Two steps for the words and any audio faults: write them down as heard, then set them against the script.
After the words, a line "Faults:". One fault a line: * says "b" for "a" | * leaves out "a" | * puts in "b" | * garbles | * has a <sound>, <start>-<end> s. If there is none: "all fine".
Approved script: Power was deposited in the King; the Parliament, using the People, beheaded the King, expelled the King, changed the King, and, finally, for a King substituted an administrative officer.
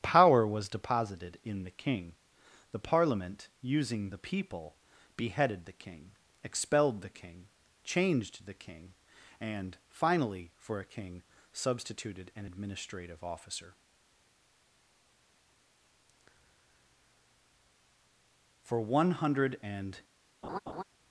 Power was deposited in the King; the Parliament, using the People, beheaded the King, expelled the King, changed the King, and, finally, for a King substituted an administrative officer. For one hundred and
Faults:
* puts in "For one hundred and"
* has a laugh, 20.4-20.8 s